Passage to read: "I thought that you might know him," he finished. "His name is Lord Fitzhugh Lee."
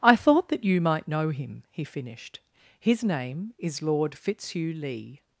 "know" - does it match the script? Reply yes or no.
yes